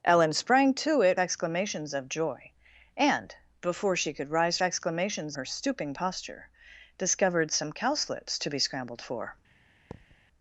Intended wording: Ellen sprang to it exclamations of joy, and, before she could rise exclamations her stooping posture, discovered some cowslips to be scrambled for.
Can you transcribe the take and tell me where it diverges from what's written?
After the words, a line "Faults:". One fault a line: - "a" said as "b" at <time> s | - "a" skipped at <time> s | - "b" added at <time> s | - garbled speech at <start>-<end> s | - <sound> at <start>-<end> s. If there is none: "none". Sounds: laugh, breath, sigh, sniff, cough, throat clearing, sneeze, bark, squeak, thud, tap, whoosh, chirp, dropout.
Ellen sprang to it exclamations of joy, and, before she could rise exclamations her stooping posture, discovered some cowslips to be scrambled for.
Faults:
- thud at 9.9-10.2 s